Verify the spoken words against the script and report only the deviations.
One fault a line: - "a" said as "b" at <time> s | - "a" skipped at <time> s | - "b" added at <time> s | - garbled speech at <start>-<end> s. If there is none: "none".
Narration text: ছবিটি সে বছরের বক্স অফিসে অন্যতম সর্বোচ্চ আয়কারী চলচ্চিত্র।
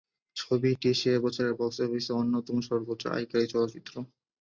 none